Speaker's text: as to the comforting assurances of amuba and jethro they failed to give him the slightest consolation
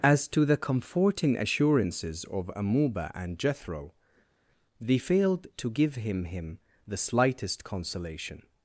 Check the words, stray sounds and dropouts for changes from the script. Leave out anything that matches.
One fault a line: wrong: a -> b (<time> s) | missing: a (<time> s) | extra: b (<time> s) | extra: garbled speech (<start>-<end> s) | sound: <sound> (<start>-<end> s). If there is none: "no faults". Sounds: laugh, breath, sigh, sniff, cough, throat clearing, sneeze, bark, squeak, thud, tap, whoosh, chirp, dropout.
extra: him (6.3 s)